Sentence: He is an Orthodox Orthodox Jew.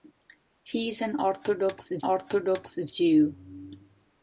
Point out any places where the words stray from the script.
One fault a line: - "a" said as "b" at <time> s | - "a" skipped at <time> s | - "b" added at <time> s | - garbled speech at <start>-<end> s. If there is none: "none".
none